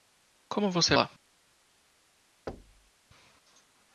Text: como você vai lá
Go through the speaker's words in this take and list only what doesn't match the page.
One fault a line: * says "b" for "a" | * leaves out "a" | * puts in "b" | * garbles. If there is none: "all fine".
* leaves out "vai"